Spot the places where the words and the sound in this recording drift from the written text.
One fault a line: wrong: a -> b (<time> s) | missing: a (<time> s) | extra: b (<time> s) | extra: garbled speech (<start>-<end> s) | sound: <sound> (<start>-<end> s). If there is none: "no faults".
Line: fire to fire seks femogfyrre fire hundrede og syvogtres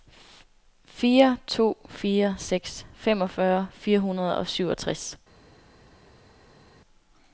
no faults